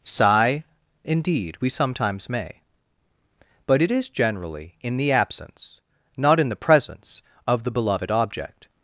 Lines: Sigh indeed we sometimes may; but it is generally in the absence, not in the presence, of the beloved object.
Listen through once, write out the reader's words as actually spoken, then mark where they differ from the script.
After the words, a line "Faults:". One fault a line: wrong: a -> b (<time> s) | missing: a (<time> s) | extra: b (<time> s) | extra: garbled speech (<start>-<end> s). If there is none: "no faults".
Sigh indeed we sometimes may; but it is generally in the absence, not in the presence, of the beloved object.
Faults:
no faults